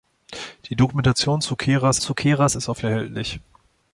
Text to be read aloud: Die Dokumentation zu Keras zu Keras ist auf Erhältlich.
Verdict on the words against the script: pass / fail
pass